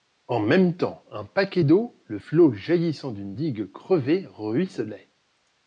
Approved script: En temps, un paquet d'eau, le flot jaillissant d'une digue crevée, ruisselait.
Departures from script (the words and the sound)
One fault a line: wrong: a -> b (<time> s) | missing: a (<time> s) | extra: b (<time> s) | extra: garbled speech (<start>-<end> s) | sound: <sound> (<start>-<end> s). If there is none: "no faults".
extra: même (0.4 s)